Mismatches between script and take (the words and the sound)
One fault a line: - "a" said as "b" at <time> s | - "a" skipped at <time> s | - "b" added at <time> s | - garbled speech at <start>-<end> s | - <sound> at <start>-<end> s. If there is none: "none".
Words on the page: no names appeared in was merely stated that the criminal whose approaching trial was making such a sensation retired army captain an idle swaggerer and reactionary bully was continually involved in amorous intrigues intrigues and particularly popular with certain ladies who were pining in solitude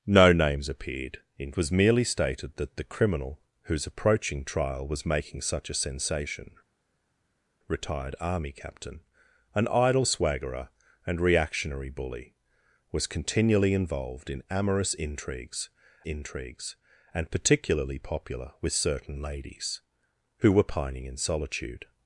none